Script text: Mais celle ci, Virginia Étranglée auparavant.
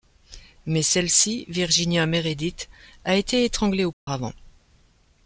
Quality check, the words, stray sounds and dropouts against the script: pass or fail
fail